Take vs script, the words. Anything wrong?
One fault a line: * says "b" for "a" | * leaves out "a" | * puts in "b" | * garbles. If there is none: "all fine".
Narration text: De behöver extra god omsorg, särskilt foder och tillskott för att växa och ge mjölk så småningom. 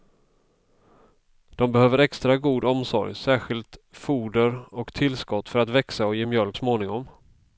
* leaves out "så"